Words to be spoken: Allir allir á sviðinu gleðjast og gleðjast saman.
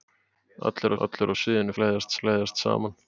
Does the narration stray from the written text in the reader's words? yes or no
no